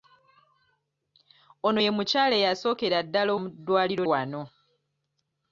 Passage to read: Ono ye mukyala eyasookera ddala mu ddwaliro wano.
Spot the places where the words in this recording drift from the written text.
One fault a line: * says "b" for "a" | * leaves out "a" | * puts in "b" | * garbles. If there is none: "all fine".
all fine